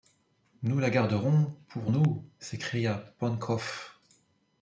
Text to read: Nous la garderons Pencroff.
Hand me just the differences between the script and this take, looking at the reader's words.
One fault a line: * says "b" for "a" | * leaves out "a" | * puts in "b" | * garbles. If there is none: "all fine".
* puts in "pour nous s'écria"